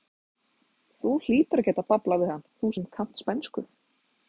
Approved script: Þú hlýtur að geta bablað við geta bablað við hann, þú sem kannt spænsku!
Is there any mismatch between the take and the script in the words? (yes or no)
yes